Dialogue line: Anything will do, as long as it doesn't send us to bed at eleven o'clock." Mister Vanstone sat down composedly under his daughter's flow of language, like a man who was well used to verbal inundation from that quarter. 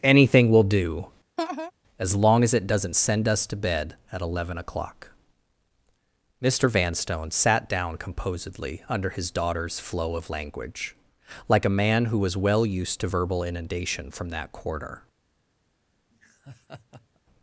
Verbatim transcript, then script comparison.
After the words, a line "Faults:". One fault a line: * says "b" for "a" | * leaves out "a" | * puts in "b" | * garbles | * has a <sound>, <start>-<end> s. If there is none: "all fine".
Anything will do, as long as it doesn't send us to bed at eleven o'clock." Mister Vanstone sat down composedly under his daughter's flow of language, like a man who was well used to verbal inundation from that quarter.
Faults:
* has a laugh, 1.4-1.7 s
* has a laugh, 16.1-17.2 s